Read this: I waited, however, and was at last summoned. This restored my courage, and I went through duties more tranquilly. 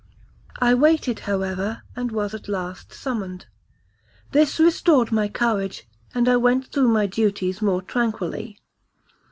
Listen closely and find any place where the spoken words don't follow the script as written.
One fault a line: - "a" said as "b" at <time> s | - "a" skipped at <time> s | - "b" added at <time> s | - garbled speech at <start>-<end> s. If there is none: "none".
- "my" added at 6.9 s